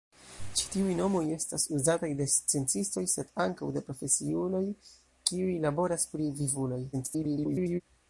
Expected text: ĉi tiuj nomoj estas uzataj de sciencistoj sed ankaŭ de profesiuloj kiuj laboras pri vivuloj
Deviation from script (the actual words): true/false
true